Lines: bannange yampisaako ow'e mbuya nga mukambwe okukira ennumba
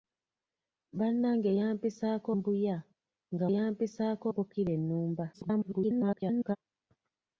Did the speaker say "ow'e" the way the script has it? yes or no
no